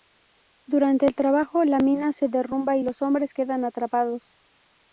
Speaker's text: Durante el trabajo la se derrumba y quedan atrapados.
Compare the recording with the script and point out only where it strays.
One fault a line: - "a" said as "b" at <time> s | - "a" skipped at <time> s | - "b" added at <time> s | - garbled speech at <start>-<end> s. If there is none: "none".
- "mina" added at 1.8 s
- "los hombres" added at 2.8 s